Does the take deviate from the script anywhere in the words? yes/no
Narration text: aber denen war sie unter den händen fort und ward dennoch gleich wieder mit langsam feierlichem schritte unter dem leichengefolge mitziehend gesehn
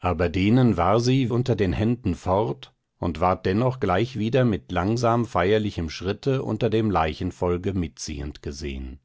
no